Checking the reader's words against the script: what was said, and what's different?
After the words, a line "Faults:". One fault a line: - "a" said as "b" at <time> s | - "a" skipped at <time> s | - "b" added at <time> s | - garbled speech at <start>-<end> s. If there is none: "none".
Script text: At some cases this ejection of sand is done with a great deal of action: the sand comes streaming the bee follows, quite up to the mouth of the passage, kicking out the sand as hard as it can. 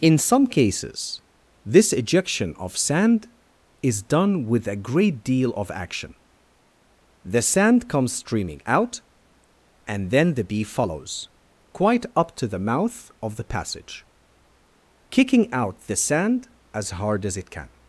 In some cases this ejection of sand is done with a great deal of action: the sand comes streaming out and then the bee follows, quite up to the mouth of the passage, kicking out the sand as hard as it can.
Faults:
- "At" said as "In" at 0.0 s
- "out and then" added at 8.7 s